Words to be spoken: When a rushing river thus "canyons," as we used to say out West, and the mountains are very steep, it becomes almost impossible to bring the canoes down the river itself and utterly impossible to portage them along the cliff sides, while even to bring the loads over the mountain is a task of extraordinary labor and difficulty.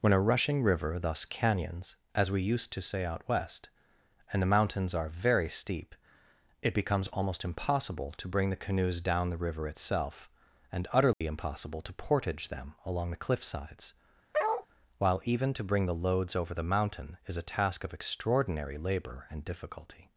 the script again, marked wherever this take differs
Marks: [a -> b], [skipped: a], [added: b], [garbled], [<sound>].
When a rushing river thus "canyons," as we used to say out West, and the mountains are very steep, it becomes almost impossible to bring the canoes down the river itself and utterly [dropout] impossible to portage them along the cliff sides, [bark] while even to bring the loads over the mountain is a task of extraordinary labor and difficulty.